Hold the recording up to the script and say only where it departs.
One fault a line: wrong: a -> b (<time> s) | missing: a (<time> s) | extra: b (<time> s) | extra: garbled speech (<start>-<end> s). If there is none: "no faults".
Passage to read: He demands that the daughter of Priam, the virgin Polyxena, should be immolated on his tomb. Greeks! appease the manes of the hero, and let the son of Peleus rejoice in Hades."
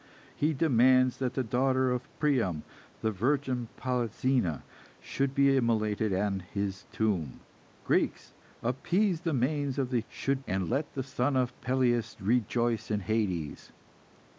wrong: hero -> should (10.0 s)